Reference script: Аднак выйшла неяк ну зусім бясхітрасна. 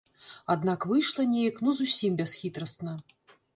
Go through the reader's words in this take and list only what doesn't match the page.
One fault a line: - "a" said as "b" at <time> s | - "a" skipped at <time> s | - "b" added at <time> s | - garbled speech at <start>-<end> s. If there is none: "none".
none